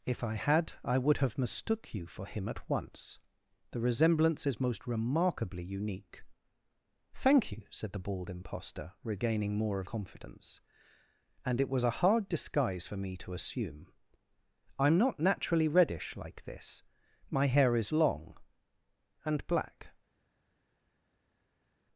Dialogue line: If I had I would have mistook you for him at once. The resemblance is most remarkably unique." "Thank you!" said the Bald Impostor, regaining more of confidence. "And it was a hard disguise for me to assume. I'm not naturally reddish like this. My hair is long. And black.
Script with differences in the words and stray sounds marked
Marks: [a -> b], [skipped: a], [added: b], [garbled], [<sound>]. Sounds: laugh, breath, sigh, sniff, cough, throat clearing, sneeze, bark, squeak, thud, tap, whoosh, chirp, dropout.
If I had I would have mistook you for him at once. The resemblance is most remarkably unique." "Thank you!" said the Bald Impostor, regaining more of confidence. "And it was a hard disguise for me to assume. I'm not naturally reddish like this. My hair is long. And black.